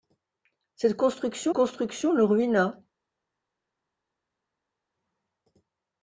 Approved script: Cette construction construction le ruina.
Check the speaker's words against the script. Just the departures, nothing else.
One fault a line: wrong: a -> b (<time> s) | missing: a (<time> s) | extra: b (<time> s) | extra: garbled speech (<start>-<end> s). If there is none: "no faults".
no faults